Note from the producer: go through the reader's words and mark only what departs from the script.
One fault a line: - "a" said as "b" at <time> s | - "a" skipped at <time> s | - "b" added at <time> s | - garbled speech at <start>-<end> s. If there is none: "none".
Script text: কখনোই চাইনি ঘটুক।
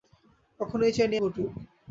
none